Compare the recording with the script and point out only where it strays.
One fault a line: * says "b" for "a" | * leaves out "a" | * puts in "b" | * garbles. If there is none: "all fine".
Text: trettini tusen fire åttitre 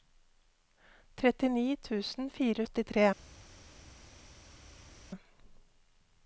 all fine